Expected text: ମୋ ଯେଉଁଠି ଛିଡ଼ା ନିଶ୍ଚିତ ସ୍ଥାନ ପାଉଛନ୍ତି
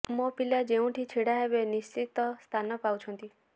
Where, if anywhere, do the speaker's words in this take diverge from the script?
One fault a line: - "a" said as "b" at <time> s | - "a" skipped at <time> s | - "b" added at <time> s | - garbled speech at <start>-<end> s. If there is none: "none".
- "ପିଲା" added at 0.3 s
- "ହେବେ" added at 1.4 s